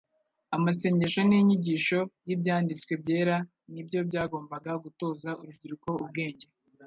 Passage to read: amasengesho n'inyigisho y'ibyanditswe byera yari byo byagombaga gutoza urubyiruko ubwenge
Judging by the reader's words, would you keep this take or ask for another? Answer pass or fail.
fail